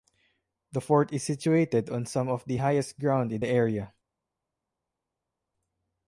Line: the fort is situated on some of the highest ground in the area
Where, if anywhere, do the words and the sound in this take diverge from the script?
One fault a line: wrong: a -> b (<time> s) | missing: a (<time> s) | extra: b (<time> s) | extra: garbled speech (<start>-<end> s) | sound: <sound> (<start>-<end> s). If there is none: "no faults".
no faults